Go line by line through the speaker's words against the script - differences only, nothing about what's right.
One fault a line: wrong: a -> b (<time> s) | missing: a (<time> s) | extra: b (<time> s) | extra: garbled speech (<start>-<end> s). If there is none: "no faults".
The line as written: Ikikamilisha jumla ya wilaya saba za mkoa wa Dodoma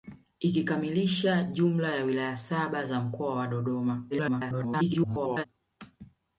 extra: garbled speech (4.1-5.4 s)